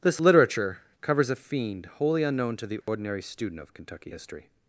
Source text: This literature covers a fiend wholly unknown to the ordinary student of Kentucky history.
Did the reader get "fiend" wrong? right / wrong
right